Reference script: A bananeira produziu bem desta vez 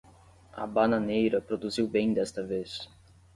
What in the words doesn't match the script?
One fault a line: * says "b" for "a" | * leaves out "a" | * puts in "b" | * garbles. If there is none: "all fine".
all fine